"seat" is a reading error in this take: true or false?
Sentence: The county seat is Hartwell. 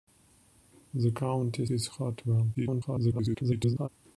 true